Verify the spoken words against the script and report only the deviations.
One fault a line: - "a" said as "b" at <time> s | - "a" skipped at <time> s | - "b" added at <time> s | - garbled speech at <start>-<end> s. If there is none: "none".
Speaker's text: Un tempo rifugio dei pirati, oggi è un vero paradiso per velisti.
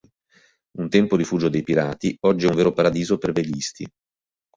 none